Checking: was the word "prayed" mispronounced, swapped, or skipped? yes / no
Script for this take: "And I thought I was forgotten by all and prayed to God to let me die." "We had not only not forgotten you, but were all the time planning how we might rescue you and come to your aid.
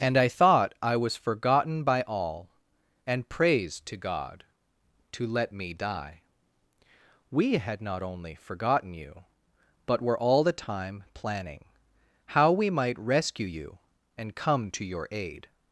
yes